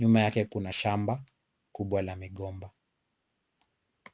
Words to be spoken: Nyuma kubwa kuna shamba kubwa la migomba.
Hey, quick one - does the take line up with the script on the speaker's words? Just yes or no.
no